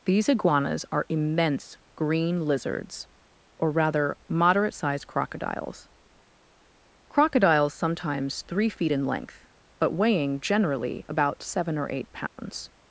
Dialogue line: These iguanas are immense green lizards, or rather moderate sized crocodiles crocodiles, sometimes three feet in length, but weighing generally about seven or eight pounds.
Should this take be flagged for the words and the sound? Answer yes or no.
yes